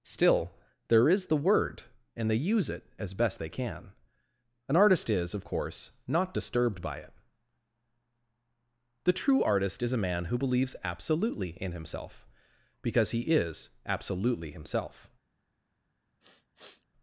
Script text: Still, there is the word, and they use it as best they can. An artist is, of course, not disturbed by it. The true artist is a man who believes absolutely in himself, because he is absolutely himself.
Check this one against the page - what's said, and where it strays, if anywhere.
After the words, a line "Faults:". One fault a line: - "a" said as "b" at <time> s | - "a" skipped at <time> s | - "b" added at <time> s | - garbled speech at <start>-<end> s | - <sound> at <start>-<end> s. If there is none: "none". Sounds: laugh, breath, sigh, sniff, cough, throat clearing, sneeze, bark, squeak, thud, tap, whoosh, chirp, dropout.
Still, there is the word, and they use it as best they can. An artist is, of course, not disturbed by it. The true artist is a man who believes absolutely in himself, because he is absolutely himself.
Faults:
- sniff at 16.2-16.9 s